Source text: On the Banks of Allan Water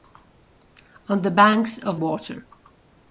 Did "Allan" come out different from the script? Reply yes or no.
yes